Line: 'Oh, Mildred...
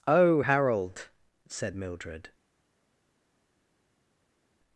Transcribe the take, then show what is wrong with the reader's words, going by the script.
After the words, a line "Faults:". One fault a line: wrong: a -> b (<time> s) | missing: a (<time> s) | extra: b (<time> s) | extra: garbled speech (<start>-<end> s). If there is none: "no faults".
'Oh, Harold,' said Mildred...
Faults:
extra: Harold said (0.4 s)